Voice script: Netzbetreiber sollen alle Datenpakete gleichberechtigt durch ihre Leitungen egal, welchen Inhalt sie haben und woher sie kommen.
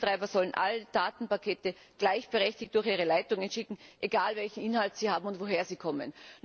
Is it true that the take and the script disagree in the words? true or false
true